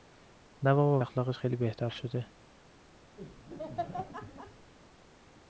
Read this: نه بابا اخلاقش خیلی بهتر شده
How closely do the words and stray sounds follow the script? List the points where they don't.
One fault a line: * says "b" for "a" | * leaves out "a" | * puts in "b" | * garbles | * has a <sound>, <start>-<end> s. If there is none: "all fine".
* has a laugh, 3.2-4.7 s